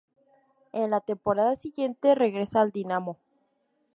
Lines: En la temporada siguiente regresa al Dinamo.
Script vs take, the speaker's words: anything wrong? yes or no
no